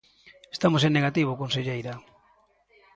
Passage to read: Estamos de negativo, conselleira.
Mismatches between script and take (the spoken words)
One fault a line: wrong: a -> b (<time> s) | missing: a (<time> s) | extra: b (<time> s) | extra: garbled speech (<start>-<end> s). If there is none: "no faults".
wrong: de -> en (0.8 s)